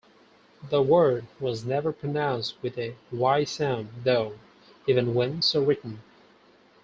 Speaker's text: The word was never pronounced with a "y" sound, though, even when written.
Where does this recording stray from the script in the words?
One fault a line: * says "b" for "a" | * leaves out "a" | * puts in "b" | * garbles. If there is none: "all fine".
* puts in "so"